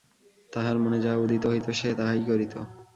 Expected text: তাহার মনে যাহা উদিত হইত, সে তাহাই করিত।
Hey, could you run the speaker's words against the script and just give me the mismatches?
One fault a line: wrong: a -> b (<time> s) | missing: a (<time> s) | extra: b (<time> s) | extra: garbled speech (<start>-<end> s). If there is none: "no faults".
no faults